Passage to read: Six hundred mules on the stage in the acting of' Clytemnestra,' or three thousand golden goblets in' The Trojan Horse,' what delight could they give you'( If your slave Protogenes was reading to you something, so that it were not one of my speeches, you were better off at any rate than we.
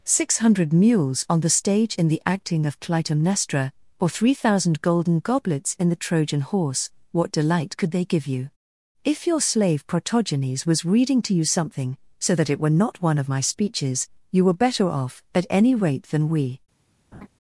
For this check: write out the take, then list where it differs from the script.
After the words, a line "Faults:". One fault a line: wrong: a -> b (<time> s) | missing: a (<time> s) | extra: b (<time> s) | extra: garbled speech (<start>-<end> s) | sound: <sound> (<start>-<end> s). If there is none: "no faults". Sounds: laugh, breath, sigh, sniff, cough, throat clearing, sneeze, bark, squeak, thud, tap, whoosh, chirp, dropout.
Six hundred mules on the stage in the acting of' Clytemnestra,' or three thousand golden goblets in' The Trojan Horse,' what delight could they give you'( If your slave Protogenes was reading to you something, so that it were not one of my speeches, you were better off at any rate than we.
Faults:
sound: laugh (17.1-17.3 s)